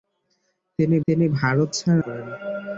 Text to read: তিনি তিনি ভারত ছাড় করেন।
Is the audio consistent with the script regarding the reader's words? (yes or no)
yes